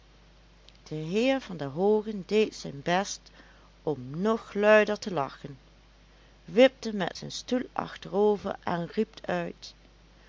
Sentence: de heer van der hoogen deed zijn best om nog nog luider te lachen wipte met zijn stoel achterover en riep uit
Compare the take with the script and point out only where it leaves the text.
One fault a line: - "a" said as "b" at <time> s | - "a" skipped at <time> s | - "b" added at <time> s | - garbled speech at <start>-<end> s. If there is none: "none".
- "nog" skipped at 4.5 s